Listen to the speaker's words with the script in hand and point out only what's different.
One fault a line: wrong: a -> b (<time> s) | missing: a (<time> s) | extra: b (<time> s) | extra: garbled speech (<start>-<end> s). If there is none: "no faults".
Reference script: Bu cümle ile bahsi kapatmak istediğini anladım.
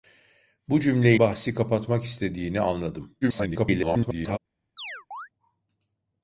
missing: ile (1.1 s)
extra: garbled speech (3.2-4.4 s)